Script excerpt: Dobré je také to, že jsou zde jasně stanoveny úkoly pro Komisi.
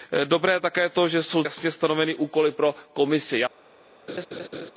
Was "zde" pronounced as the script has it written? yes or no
no